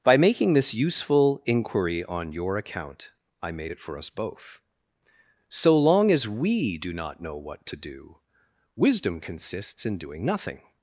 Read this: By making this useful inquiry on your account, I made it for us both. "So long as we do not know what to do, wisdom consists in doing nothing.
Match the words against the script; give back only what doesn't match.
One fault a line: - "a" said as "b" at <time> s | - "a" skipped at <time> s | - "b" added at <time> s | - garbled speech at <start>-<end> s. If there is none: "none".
none